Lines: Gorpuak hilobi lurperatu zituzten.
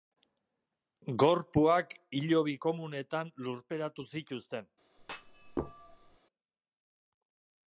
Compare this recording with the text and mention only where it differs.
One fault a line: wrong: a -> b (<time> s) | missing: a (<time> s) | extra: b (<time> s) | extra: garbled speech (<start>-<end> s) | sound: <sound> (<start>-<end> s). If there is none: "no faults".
extra: komunetan (2.7 s)
sound: thud (5.0-6.2 s)